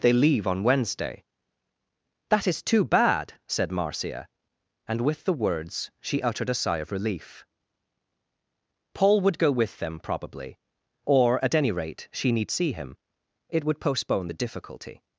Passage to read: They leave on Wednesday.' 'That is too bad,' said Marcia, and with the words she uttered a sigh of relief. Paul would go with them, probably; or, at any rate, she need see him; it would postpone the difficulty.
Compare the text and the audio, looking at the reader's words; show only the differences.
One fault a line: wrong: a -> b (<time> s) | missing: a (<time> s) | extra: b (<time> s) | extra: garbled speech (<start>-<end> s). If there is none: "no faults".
no faults